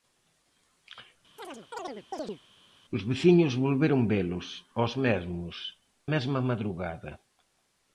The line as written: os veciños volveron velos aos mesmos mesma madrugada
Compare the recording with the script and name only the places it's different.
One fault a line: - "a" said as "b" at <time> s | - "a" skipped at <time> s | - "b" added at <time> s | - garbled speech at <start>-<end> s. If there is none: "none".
none